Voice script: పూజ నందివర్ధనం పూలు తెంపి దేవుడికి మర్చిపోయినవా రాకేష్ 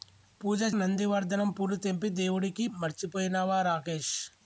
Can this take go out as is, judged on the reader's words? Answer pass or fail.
pass